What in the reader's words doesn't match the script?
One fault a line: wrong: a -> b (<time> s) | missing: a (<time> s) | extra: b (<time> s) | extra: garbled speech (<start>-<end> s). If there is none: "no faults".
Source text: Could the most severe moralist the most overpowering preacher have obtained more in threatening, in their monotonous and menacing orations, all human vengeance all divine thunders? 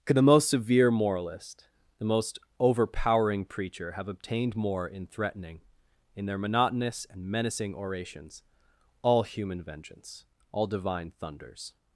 no faults